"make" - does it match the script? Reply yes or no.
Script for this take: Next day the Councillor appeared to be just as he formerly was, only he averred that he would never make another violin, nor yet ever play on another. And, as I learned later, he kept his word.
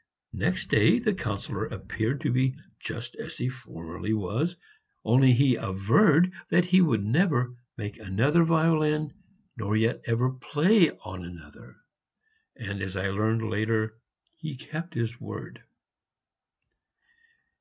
yes